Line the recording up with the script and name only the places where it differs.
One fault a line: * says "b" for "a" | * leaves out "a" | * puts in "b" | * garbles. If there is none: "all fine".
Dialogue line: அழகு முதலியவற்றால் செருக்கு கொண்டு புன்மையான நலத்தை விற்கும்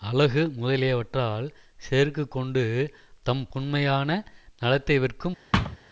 * puts in "தம்"